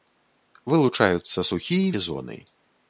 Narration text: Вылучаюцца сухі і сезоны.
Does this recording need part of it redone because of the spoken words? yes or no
no